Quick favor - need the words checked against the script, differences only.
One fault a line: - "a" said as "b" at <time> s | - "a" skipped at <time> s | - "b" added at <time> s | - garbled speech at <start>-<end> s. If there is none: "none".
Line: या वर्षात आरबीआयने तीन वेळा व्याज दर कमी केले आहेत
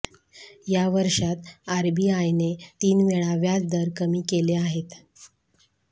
none